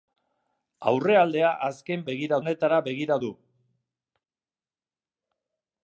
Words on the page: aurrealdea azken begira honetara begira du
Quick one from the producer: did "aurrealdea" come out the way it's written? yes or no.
yes